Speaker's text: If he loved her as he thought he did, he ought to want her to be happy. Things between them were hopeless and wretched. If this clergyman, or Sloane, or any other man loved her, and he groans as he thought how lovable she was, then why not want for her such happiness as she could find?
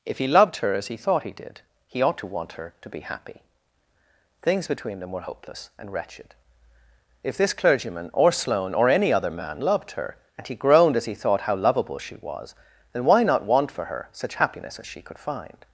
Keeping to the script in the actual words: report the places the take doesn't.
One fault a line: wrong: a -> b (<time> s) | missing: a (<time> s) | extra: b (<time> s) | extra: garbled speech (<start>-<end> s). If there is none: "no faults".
wrong: groans -> groaned (10.5 s)